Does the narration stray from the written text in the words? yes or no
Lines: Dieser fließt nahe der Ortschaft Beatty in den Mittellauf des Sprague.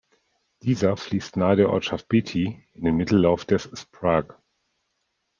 no